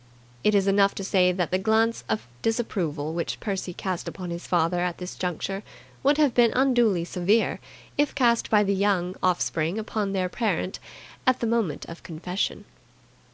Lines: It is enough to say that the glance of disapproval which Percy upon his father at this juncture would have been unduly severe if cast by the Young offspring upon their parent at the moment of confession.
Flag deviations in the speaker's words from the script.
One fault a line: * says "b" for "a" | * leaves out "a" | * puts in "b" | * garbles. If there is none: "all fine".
* puts in "cast"